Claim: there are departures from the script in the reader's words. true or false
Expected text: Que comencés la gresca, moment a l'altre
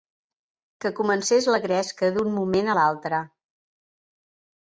true